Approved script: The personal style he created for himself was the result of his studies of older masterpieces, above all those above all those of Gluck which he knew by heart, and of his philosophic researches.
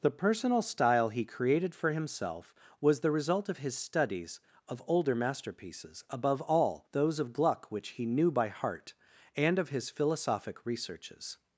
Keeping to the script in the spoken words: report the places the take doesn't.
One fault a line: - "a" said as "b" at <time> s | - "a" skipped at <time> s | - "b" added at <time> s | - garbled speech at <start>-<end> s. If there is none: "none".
- "above all those" skipped at 7.2 s